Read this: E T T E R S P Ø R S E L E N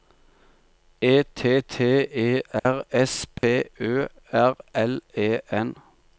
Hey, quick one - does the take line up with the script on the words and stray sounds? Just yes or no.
no